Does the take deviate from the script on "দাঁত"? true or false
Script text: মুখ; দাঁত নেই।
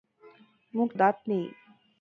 false